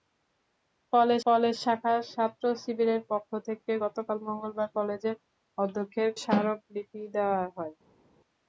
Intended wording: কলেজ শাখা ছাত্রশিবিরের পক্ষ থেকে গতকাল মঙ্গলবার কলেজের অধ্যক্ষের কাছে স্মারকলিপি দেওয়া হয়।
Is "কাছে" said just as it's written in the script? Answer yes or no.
no